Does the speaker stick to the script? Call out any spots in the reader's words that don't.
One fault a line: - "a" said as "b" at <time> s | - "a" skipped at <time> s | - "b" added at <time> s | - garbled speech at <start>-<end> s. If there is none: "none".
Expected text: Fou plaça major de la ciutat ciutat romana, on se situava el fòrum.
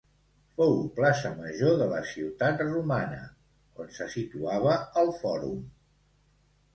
- "ciutat" skipped at 2.6 s